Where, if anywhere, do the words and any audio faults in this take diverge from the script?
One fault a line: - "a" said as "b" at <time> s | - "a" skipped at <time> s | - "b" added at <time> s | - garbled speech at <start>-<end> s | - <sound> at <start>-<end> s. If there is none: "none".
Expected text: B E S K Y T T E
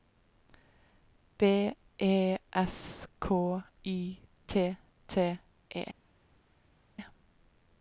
none